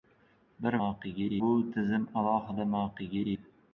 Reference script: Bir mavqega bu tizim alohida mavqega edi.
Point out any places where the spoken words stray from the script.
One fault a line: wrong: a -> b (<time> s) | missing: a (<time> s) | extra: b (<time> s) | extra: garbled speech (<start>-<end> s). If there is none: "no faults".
no faults